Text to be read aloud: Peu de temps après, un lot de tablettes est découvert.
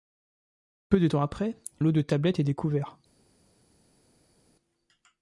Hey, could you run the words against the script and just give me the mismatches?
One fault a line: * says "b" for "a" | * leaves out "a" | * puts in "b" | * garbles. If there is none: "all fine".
* leaves out "un"